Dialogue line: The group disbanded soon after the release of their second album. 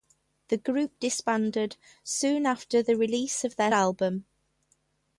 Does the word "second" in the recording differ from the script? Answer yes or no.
yes